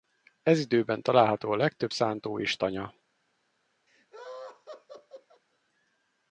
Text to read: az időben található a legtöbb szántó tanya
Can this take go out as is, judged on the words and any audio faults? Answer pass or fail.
fail